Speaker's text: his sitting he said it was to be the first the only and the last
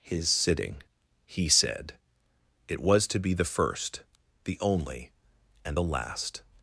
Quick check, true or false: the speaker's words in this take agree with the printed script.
true